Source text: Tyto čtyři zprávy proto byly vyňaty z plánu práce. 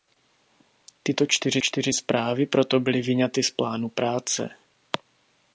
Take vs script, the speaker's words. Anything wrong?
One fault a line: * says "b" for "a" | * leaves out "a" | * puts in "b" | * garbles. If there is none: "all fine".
* puts in "čtyři"